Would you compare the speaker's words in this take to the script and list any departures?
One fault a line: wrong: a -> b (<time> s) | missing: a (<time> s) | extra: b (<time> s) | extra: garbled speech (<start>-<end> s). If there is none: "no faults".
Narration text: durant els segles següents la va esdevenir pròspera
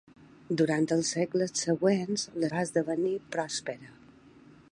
no faults